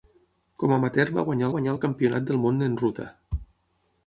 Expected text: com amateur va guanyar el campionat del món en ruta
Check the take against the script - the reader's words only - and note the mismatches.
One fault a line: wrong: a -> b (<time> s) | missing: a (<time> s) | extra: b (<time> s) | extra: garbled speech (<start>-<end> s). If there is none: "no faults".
extra: guanyar (1.5 s)